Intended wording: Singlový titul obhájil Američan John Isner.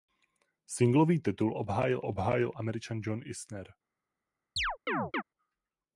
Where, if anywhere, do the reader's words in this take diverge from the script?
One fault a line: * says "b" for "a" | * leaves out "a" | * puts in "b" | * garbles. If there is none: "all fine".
* puts in "obhájil"